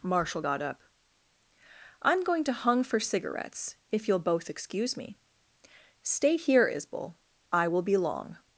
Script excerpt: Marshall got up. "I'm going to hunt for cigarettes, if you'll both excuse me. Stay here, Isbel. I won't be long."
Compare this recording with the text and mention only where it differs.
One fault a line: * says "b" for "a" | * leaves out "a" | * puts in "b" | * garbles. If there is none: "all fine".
* says "hung" for "hunt"
* says "will" for "won't"